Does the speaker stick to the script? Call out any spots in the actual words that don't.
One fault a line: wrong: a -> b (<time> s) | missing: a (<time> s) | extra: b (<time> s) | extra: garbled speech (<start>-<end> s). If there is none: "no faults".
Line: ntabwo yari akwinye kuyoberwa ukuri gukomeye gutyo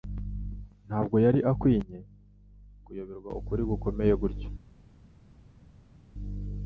no faults